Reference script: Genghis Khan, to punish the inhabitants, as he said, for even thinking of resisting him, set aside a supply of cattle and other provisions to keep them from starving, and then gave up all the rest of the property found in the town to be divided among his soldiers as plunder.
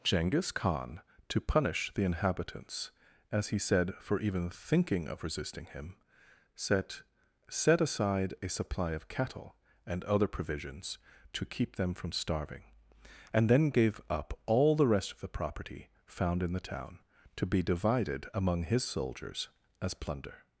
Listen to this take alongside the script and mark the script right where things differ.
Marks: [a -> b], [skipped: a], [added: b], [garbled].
Genghis Khan, to punish the inhabitants, as he said, for even thinking of resisting him, set [added: set] aside a supply of cattle and other provisions to keep them from starving, and then gave up all the rest of the property found in the town to be divided among his soldiers as plunder.